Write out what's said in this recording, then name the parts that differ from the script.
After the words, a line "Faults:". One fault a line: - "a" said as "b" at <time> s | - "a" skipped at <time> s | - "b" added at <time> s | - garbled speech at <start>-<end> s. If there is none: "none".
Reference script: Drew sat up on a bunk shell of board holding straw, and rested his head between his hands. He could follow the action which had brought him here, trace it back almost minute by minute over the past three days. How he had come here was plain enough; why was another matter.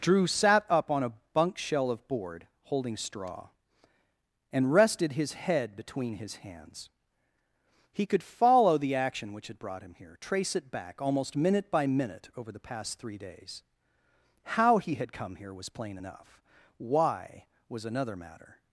Drew sat up on a bunk shell of board holding straw, and rested his head between his hands. He could follow the action which had brought him here, trace it back almost minute by minute over the past three days. How he had come here was plain enough; why was another matter.
Faults:
none